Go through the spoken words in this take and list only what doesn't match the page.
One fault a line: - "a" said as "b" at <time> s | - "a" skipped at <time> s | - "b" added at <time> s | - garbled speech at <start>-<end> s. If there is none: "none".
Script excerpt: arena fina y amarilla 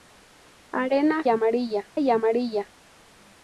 - "fina" said as "amarilla" at 1.3 s